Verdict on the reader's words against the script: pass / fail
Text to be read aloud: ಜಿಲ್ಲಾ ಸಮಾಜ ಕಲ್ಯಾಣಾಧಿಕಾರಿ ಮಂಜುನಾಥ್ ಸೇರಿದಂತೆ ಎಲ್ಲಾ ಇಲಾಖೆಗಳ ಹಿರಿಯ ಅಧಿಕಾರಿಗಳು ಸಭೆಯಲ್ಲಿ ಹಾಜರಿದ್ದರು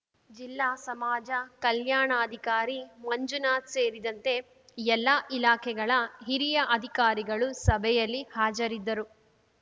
pass